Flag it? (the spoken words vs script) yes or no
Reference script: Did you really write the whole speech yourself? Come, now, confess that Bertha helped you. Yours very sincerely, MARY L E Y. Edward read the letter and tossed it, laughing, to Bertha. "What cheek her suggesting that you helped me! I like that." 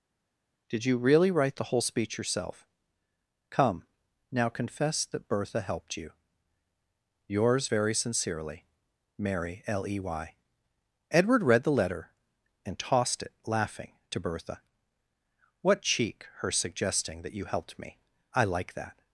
no